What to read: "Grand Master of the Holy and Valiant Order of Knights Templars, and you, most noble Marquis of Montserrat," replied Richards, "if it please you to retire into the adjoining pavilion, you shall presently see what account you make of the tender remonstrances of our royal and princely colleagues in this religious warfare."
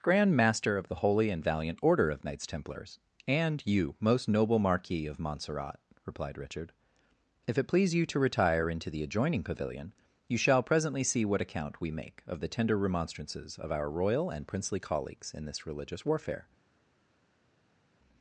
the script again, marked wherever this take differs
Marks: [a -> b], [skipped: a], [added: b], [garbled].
"Grand Master of the Holy and Valiant Order of Knights Templars, and you, most noble Marquis of Montserrat," replied [Richards, -> Richard] "if it please you to retire into the adjoining pavilion, you shall presently see what account [you -> we] make of the tender remonstrances of our royal and princely colleagues in this religious warfare."